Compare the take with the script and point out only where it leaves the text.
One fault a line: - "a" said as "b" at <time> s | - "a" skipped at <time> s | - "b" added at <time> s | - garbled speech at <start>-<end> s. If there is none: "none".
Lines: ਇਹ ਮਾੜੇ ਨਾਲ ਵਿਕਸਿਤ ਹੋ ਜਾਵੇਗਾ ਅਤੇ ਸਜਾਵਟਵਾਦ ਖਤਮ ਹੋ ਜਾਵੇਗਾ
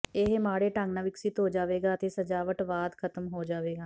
- "ਢੰਗ" added at 0.7 s